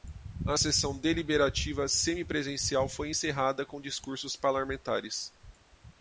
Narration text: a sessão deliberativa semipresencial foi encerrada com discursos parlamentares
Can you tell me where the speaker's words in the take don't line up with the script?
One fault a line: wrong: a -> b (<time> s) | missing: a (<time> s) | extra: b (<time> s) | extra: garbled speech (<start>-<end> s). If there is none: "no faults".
no faults